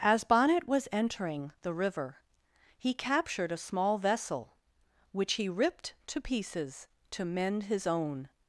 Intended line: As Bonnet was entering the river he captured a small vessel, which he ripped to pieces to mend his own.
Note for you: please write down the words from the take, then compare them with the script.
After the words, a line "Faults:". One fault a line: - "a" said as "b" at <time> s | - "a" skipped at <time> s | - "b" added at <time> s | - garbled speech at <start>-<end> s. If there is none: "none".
As Bonnet was entering the river he captured a small vessel, which he ripped to pieces to mend his own.
Faults:
none